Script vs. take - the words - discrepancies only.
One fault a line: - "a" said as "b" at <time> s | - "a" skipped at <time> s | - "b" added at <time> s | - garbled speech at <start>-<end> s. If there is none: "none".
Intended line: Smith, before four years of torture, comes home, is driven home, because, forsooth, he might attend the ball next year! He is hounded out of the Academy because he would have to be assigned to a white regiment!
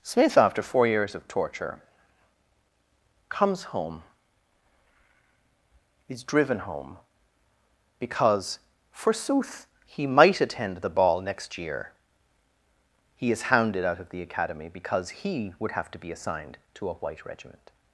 - "before" said as "after" at 0.4 s